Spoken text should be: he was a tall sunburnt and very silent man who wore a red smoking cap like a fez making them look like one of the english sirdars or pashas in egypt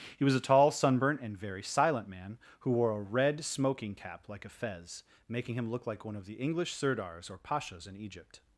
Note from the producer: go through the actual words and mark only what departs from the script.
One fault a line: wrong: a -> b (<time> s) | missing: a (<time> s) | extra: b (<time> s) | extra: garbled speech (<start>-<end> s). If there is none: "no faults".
wrong: them -> him (5.5 s)